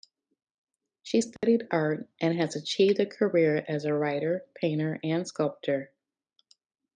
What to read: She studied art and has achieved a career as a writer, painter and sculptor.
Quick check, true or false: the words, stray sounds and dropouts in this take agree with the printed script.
false